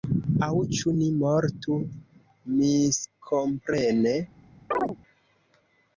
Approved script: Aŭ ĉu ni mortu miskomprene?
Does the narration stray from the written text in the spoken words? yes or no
no